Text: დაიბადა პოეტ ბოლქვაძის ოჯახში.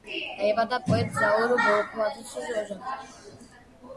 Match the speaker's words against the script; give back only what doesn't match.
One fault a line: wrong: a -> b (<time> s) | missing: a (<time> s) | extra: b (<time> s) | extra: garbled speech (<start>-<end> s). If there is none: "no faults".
extra: ზაურ (1.2 s)